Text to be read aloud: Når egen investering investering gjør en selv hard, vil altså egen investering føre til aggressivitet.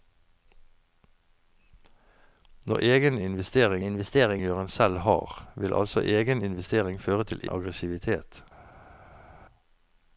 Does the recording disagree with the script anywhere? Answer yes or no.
no